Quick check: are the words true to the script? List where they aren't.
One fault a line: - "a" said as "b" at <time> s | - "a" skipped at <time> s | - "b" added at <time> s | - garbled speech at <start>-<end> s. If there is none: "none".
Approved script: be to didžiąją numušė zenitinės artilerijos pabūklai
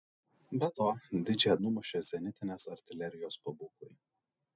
none